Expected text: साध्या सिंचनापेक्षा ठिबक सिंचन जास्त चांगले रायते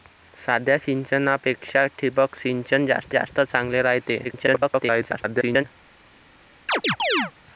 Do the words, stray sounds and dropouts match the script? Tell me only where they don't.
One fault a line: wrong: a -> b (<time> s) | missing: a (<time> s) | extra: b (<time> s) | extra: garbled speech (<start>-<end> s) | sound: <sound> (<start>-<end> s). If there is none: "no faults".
extra: जास्त (3.1 s)
extra: garbled speech (4.2-5.6 s)
sound: chirp (6.7-7.3 s)